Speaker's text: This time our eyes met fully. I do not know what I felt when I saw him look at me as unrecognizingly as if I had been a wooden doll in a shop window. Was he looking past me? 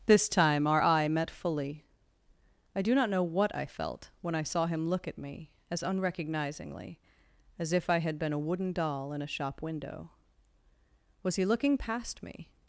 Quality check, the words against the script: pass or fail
fail